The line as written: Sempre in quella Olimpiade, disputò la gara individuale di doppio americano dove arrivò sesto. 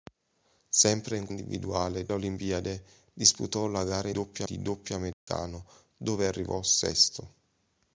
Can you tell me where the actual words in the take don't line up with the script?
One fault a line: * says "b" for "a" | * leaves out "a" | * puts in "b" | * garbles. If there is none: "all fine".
* says "individuale" for "quella"
* says "doppio" for "individuale"